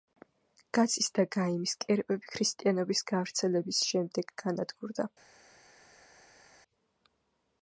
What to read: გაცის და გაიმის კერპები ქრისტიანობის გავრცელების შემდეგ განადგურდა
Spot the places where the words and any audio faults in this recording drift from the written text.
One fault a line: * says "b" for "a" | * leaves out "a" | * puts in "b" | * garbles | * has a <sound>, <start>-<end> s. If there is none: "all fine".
all fine